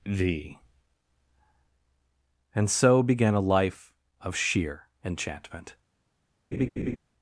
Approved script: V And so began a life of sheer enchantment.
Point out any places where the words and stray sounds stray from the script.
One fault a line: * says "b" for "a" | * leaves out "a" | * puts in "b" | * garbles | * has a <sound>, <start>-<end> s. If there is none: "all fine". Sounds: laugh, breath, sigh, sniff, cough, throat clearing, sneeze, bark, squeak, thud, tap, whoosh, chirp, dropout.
* has a laugh, 6.5-7.0 s